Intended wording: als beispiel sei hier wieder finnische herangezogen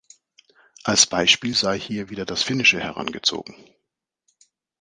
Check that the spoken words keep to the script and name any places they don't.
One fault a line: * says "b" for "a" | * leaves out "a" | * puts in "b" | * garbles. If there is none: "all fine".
* puts in "das"